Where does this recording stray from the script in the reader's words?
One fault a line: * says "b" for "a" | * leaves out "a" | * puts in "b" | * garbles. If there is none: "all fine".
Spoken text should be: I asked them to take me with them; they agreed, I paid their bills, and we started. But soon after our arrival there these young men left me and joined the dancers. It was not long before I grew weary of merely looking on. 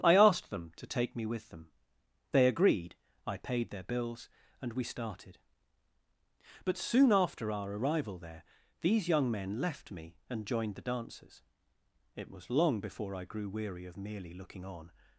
* leaves out "not"